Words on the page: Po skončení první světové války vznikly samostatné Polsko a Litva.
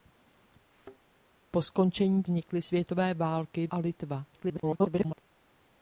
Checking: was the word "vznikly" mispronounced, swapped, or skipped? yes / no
yes